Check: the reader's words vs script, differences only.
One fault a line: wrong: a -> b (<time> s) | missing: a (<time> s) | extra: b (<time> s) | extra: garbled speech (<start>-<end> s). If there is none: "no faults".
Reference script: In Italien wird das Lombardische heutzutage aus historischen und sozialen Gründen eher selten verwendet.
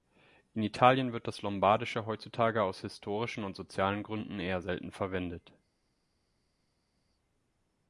no faults